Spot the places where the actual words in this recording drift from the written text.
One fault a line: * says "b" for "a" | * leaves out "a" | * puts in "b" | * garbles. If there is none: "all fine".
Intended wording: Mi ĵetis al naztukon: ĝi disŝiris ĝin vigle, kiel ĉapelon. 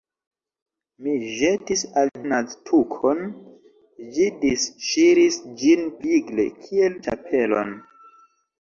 all fine